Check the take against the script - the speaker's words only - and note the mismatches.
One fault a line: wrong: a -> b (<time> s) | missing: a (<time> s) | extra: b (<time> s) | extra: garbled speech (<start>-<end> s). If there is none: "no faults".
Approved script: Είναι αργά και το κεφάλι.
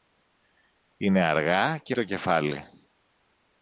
no faults